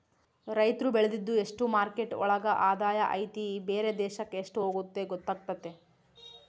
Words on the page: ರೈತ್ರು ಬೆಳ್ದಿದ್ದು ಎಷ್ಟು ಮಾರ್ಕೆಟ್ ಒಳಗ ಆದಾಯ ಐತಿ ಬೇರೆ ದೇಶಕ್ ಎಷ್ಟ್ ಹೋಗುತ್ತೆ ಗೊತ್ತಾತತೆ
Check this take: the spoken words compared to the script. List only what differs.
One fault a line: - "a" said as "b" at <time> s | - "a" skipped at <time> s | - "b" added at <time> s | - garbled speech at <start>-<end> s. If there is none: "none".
none